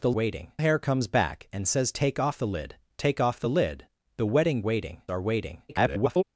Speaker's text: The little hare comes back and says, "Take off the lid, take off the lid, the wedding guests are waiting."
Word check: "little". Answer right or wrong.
wrong